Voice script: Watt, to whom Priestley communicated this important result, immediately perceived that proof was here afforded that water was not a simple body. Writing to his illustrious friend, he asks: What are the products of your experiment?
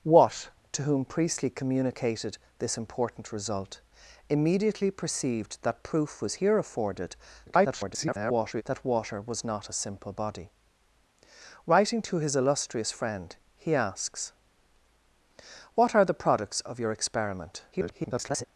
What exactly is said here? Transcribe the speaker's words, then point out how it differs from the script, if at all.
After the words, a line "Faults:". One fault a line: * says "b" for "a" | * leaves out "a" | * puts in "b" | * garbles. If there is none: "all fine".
Watt, to whom Priestley communicated this important result, immediately perceived that proof was here afforded [garbled] that water was not a simple body. Writing to his illustrious friend, he asks: What are the products of your experiment? [garbled]
Faults:
* garbles
* garbles